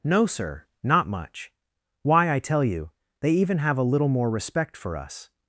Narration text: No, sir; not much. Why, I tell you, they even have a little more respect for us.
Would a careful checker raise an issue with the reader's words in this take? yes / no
no